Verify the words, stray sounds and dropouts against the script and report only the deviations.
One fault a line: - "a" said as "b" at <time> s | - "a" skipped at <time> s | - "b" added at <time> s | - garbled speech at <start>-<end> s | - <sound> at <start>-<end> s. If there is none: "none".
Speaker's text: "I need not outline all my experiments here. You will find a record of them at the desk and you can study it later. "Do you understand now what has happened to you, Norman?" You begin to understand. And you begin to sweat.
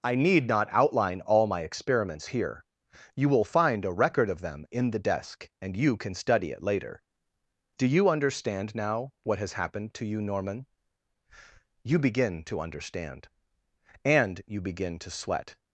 - "at" said as "in" at 4.7 s